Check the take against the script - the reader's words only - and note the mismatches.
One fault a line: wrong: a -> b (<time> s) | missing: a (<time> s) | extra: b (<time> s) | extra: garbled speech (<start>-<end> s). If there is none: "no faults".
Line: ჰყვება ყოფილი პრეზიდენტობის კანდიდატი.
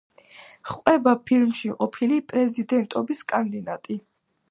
extra: ფილმში (1.3 s)